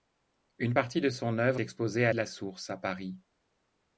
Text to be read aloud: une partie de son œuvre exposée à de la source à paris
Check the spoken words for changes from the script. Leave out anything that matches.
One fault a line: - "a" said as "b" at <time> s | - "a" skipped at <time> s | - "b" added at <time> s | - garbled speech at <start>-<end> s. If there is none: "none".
none